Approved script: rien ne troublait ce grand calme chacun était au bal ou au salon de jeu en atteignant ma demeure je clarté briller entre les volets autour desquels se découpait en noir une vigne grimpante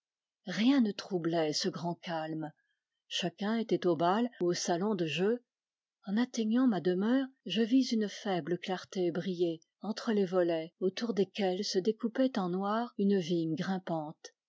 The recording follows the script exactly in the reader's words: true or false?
false